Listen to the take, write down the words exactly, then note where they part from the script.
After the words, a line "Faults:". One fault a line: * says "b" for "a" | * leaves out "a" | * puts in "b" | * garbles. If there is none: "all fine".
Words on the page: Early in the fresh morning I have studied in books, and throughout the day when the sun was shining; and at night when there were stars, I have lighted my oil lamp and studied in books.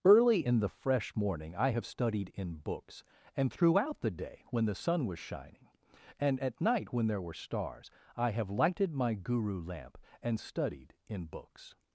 Early in the fresh morning I have studied in books, and throughout the day when the sun was shining; and at night when there were stars, I have lighted my guru lamp and studied in books.
Faults:
* says "guru" for "oil"